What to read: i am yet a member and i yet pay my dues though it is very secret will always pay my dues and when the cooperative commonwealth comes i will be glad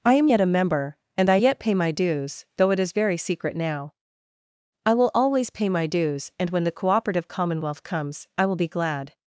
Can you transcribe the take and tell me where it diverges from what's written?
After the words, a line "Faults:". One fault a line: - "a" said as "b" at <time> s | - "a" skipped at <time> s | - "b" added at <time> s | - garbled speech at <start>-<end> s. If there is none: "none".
i am yet a member and i yet pay my dues though it is very secret now i will always pay my dues and when the cooperative commonwealth comes i will be glad
Faults:
- "now i" added at 3.6 s